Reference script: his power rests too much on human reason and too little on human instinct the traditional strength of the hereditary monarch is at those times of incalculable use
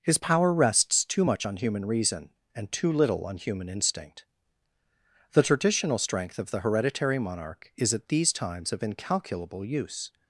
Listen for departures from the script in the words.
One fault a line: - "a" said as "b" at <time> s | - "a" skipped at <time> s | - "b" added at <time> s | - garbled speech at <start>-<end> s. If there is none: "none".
- "those" said as "these" at 8.1 s